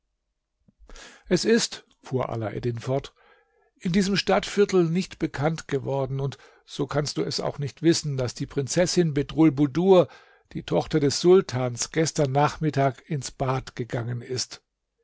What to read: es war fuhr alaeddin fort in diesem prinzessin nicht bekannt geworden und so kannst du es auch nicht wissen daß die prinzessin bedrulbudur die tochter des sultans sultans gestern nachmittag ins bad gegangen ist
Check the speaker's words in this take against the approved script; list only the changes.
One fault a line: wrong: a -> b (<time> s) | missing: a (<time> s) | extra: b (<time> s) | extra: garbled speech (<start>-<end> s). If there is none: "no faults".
wrong: war -> ist (1.4 s)
wrong: prinzessin -> stadtviertel (4.1 s)
missing: sultans (11.9 s)